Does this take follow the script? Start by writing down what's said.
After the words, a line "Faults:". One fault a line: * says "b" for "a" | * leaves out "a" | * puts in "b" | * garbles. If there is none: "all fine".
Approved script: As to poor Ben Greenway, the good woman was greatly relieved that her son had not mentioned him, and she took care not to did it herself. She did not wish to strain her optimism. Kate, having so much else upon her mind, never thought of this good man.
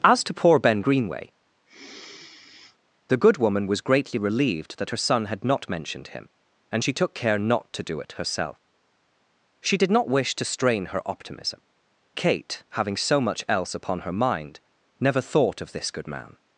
As to poor Ben Greenway, the good woman was greatly relieved that her son had not mentioned him, and she took care not to do it herself. She did not wish to strain her optimism. Kate, having so much else upon her mind, never thought of this good man.
Faults:
* says "do" for "did"